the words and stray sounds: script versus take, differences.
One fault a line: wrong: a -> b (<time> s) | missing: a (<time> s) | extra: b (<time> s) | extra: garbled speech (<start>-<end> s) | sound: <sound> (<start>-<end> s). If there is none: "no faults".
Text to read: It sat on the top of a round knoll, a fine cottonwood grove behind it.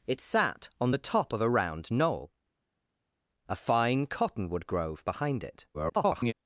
extra: garbled speech (5.7-6.3 s)